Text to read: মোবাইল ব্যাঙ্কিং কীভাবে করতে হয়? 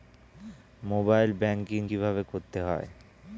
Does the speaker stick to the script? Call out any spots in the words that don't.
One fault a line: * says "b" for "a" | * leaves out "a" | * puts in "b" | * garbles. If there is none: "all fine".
all fine